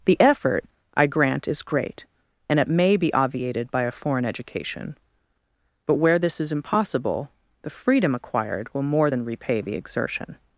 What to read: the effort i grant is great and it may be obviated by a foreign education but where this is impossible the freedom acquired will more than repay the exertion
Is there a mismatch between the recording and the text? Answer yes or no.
no